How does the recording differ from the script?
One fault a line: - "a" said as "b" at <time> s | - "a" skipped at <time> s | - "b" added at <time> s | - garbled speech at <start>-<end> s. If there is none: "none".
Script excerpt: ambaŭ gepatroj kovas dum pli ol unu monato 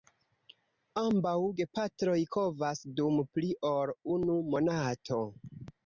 none